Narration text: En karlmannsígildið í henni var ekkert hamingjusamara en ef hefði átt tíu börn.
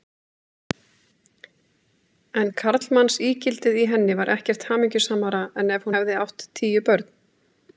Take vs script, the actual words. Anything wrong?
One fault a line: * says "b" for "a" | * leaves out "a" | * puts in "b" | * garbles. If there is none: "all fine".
all fine